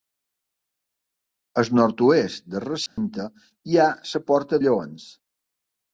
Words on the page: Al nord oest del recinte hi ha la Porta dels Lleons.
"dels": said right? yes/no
no